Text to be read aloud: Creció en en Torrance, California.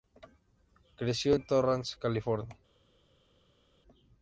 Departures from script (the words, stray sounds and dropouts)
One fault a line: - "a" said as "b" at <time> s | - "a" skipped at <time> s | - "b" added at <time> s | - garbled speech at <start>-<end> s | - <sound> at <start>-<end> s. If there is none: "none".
- "en" skipped at 1.5 s